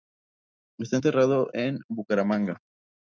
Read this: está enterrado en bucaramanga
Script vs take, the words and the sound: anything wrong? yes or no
no